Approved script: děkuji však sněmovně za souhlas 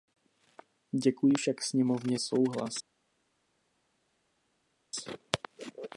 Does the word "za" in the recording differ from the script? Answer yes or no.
yes